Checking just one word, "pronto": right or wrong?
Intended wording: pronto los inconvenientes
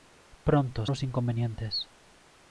right